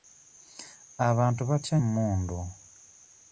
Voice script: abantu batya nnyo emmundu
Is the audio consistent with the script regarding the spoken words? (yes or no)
no